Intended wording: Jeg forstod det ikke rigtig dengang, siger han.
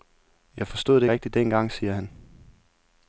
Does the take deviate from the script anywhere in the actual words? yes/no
yes